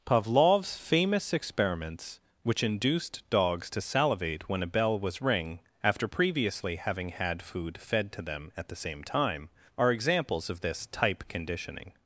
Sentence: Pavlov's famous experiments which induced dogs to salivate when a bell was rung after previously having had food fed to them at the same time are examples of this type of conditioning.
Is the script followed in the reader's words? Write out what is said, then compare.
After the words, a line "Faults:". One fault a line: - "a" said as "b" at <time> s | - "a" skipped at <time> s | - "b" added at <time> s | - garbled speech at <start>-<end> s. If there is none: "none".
Pavlov's famous experiments which induced dogs to salivate when a bell was ring after previously having had food fed to them at the same time are examples of this type conditioning.
Faults:
- "rung" said as "ring" at 5.2 s
- "of" skipped at 11.2 s